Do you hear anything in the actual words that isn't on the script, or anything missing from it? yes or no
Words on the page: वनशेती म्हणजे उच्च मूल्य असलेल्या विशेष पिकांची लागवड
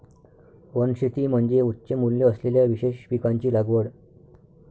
no